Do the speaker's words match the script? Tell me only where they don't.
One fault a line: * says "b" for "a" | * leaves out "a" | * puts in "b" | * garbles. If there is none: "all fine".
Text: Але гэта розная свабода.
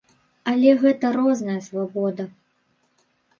all fine